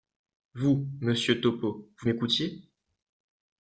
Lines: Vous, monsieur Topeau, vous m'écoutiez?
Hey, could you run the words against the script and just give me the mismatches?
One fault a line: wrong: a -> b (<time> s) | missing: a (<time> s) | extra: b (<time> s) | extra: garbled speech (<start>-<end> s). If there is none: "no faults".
no faults